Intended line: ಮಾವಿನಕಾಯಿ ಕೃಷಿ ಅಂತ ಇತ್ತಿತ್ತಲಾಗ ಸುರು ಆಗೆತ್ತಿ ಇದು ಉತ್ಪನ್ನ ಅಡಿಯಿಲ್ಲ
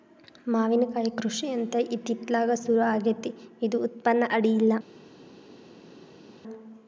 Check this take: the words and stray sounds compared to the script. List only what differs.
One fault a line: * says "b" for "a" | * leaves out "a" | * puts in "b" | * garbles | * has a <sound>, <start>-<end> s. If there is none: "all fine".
all fine